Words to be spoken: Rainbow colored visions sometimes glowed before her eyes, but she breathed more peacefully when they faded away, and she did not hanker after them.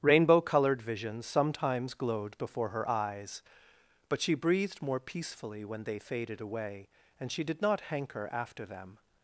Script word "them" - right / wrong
right